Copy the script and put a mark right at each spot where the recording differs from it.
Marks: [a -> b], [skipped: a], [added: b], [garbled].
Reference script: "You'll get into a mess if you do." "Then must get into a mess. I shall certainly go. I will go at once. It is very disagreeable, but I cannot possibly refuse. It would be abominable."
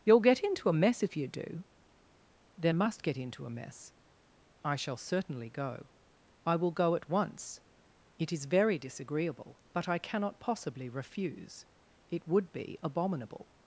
"You'll get into a mess if you do." "Then must get into a mess. I shall certainly go. I will go at once. It is very disagreeable, but I cannot possibly refuse. It would be abominable."